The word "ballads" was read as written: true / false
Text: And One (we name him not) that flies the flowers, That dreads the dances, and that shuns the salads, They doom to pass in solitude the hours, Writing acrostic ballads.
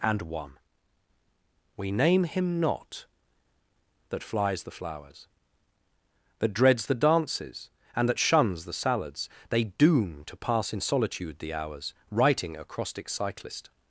false